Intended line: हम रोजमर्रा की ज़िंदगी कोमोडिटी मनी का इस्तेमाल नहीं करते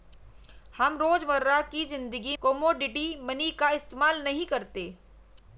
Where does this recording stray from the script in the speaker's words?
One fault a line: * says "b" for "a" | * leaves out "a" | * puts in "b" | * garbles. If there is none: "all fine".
all fine